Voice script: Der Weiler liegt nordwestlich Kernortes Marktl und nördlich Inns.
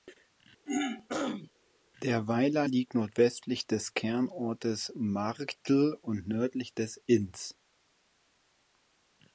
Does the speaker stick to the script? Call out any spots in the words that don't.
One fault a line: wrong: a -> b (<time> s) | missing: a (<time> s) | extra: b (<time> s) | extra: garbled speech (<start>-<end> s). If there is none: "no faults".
extra: des (3.7 s)
extra: des (6.7 s)